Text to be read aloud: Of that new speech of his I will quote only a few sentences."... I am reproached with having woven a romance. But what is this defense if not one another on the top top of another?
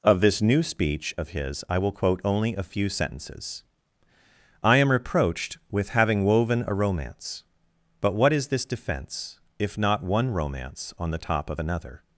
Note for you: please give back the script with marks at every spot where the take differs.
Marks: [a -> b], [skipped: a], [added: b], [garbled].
Of [that -> this] new speech of his I will quote only a few sentences."... I am reproached with having woven a romance. But what is this defense if not one [another -> romance] on the top [skipped: top] of another?